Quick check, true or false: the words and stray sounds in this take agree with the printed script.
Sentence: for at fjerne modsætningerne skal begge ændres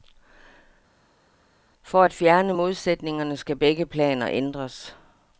false